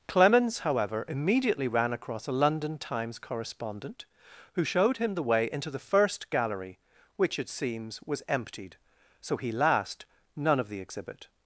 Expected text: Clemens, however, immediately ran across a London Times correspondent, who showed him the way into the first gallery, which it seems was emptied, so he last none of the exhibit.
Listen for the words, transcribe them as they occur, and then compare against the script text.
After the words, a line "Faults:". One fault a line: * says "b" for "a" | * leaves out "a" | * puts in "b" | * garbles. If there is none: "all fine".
Clemens, however, immediately ran across a London Times correspondent, who showed him the way into the first gallery, which it seems was emptied, so he last none of the exhibit.
Faults:
all fine